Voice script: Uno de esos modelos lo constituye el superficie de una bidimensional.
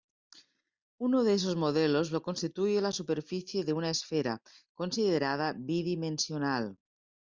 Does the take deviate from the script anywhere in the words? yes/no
yes